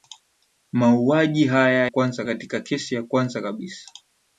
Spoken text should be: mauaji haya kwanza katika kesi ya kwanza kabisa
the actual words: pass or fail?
pass